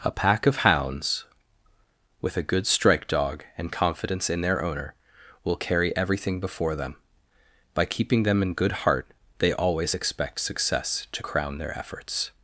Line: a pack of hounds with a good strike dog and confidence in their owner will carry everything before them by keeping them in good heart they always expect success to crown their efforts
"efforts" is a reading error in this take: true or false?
false